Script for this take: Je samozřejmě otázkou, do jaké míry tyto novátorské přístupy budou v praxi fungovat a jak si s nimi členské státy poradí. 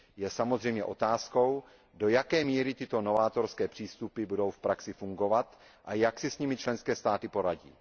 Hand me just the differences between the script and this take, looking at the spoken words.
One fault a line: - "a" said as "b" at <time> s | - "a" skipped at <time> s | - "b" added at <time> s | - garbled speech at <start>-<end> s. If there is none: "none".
none